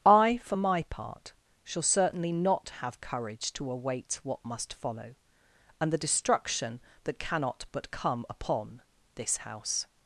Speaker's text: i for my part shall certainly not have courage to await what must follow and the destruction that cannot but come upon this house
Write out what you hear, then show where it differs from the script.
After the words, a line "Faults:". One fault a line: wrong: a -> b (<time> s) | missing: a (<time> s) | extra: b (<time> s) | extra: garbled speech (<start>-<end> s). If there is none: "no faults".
i for my part shall certainly not have courage to await what must follow and the destruction that cannot but come upon this house
Faults:
no faults